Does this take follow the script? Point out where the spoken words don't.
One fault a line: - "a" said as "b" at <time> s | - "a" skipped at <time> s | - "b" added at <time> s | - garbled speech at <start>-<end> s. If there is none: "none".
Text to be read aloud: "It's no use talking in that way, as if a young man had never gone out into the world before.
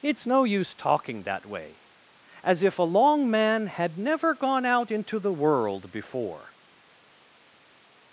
- "in" skipped at 1.2 s
- "young" said as "long" at 2.8 s